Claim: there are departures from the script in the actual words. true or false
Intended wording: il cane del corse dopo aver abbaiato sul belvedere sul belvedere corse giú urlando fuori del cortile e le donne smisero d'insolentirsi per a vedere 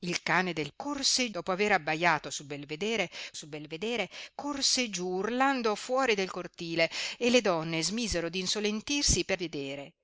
false